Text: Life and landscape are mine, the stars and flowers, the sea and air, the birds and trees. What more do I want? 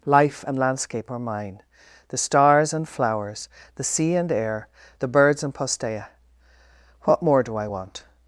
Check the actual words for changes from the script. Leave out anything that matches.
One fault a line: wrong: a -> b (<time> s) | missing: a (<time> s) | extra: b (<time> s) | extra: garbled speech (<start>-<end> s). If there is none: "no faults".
wrong: trees -> postea (5.5 s)